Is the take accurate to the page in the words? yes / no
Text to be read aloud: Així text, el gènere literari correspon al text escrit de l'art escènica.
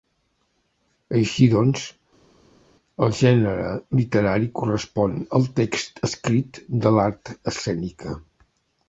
no